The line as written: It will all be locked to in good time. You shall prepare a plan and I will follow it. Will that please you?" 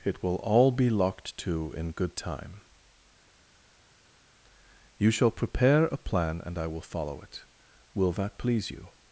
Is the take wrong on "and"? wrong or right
right